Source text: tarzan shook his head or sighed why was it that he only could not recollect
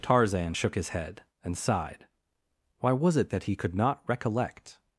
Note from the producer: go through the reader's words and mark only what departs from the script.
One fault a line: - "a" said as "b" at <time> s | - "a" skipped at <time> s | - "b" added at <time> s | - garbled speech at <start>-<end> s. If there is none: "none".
- "or" said as "and" at 1.4 s
- "only" skipped at 3.6 s